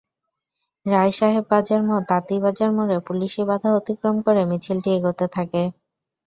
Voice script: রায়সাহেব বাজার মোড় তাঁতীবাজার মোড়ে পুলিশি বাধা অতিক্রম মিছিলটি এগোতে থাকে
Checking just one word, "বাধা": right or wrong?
right